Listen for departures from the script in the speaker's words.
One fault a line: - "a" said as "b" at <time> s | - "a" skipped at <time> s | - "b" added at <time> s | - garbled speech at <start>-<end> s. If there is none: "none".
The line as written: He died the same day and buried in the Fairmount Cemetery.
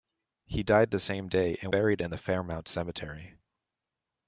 none